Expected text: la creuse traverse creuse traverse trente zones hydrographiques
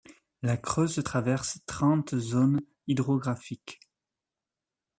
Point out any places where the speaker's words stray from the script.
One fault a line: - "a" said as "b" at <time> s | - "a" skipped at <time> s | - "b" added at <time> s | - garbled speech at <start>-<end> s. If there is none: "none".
- "creuse traverse" skipped at 1.6 s